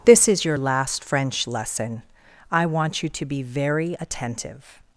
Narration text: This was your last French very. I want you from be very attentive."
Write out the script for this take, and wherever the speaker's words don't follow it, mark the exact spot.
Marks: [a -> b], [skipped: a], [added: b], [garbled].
This [was -> is] your last French [very. -> lesson] I want you [from -> to] be very attentive."